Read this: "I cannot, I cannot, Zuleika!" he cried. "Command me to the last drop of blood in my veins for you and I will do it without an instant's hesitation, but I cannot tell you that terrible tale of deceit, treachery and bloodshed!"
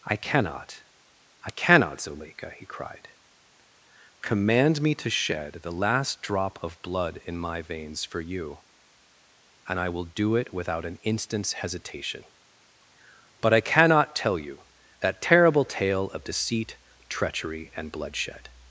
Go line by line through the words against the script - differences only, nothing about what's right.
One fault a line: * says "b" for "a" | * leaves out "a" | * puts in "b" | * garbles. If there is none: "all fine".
* puts in "shed"